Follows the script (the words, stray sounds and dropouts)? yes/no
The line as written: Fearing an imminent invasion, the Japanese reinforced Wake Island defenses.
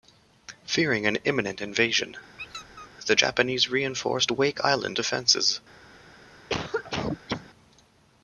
no